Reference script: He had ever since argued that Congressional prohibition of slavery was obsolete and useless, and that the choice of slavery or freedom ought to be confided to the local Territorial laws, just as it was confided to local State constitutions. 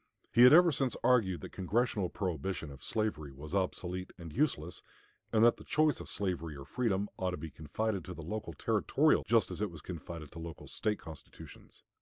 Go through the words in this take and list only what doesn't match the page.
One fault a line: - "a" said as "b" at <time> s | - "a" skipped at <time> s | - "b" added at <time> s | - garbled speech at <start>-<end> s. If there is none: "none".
- "laws" skipped at 9.2 s